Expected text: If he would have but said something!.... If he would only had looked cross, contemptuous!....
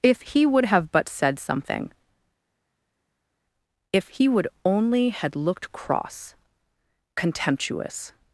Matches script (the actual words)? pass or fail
pass